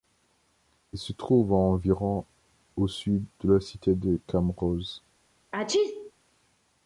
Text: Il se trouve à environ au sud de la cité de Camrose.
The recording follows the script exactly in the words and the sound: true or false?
false